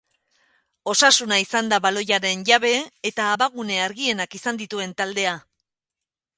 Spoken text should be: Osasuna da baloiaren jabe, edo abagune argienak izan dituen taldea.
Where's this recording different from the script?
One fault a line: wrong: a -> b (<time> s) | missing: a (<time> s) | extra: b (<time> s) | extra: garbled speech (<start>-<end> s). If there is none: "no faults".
extra: izan (1.4 s)
wrong: edo -> eta (3.1 s)